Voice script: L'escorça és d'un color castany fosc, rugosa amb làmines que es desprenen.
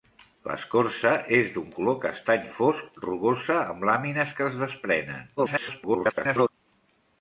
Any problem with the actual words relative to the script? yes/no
yes